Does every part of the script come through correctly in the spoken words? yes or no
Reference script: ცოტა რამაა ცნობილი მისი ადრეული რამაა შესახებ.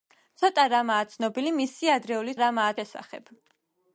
yes